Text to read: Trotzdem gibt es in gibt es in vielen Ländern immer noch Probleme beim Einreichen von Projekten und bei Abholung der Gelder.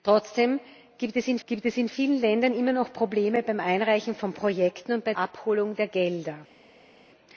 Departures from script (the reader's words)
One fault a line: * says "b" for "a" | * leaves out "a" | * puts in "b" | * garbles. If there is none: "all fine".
all fine